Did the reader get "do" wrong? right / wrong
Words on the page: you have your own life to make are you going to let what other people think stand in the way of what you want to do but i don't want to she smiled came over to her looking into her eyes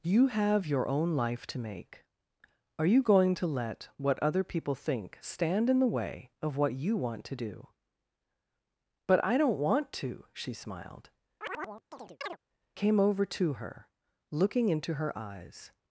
right